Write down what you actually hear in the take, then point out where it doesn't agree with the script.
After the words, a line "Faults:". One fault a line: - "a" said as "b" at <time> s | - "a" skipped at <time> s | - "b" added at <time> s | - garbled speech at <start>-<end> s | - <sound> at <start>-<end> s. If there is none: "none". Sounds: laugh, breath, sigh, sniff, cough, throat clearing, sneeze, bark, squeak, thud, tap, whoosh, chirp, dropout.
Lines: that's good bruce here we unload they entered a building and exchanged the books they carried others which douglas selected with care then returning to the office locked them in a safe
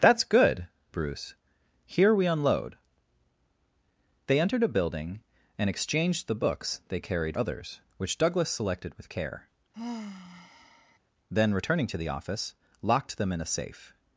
that's good bruce here we unload they entered a building and exchanged the books they carried others which douglas selected with care then returning to the office locked them in a safe
Faults:
- sigh at 9.7-11.0 s